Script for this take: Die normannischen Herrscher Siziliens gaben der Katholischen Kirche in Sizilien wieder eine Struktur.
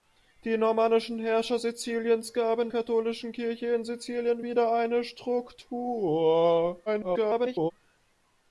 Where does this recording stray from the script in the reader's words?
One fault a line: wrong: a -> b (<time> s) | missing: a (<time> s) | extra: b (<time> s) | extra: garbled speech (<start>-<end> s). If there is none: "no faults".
missing: der (2.7 s)
extra: garbled speech (6.9-7.7 s)